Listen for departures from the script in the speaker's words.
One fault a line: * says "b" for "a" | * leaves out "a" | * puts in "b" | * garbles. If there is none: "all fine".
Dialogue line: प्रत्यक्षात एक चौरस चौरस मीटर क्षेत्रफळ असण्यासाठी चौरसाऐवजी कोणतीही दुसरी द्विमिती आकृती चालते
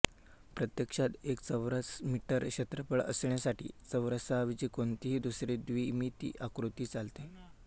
* leaves out "चौरस"